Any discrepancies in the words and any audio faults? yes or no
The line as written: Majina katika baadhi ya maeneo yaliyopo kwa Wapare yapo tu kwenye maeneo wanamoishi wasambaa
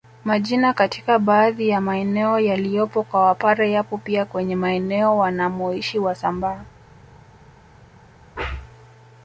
yes